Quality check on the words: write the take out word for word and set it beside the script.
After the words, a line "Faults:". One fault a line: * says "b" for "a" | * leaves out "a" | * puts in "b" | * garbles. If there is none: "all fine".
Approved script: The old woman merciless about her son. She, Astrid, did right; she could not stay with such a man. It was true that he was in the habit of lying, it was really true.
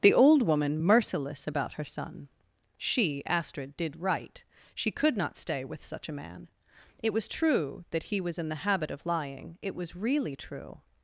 The old woman merciless about her son. She, Astrid, did right; she could not stay with such a man. It was true that he was in the habit of lying, it was really true.
Faults:
all fine